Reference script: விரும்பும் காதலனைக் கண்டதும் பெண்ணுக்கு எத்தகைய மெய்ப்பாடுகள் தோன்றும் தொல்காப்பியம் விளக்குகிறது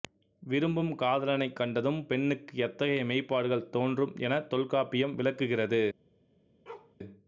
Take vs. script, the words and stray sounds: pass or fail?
fail